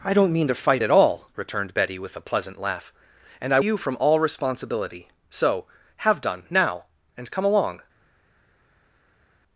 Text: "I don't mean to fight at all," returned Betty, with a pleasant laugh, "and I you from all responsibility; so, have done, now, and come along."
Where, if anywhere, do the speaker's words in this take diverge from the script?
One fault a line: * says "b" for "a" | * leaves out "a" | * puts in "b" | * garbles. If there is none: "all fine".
all fine